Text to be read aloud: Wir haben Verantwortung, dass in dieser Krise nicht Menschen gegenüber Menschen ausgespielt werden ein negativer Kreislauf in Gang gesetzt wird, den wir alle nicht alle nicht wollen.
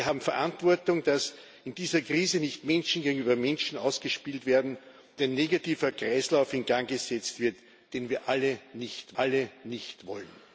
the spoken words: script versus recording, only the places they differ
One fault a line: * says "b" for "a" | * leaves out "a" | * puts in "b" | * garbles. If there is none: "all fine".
all fine